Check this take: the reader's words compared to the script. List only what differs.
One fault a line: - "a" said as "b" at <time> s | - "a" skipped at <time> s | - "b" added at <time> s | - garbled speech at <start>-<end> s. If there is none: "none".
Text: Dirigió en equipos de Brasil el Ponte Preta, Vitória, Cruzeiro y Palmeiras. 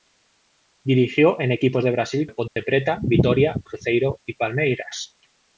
none